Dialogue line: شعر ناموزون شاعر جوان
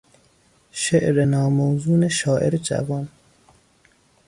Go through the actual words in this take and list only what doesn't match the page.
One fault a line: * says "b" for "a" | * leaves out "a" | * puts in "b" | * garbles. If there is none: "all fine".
all fine